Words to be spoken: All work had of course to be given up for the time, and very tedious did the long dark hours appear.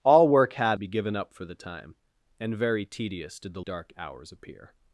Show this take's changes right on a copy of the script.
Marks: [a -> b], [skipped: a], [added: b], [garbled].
All work had [skipped: of course to] be given up for the time, and very tedious did the [skipped: long] dark hours appear.